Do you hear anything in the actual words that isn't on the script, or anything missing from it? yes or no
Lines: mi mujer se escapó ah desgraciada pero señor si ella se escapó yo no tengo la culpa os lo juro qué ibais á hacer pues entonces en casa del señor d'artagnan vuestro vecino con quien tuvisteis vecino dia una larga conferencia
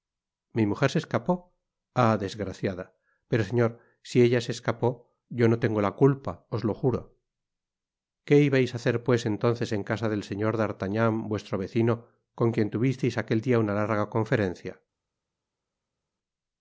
yes